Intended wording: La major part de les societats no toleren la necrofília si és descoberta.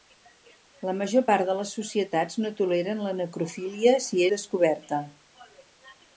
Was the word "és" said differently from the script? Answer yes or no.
yes